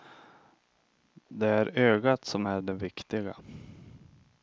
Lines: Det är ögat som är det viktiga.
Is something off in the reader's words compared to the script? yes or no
no